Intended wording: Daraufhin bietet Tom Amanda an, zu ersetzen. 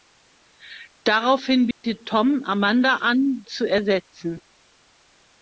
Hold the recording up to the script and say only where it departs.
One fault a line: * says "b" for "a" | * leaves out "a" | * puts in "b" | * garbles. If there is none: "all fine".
all fine